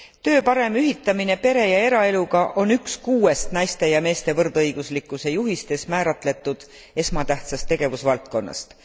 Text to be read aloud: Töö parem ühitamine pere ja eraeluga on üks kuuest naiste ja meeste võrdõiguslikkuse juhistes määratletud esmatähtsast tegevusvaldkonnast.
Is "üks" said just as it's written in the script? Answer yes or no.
yes